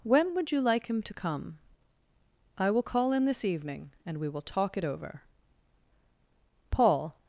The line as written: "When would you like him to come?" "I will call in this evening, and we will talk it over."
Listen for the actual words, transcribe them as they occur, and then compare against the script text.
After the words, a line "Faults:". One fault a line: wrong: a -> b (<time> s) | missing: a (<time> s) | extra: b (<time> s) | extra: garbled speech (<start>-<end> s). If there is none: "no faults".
"When would you like him to come?" "I will call in this evening, and we will talk it over." Paul
Faults:
extra: Paul (6.7 s)